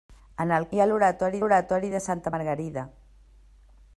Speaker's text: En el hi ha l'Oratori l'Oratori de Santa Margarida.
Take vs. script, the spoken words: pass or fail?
pass